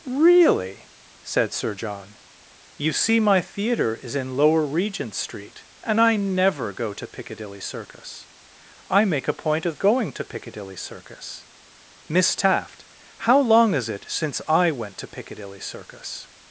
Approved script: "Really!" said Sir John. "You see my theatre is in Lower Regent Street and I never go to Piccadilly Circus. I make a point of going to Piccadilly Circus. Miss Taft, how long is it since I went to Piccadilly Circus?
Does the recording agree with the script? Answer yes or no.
yes